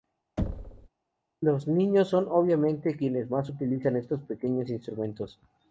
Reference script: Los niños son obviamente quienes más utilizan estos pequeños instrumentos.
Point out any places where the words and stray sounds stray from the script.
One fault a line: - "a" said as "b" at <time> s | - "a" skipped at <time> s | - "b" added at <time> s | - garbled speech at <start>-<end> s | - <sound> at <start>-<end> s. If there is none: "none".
- thud at 0.4-0.9 s